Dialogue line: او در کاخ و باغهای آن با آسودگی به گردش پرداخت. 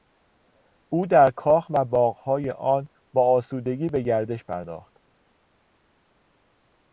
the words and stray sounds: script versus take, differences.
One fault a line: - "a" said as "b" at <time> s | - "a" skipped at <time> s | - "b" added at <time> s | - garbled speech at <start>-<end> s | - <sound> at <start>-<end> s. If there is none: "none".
none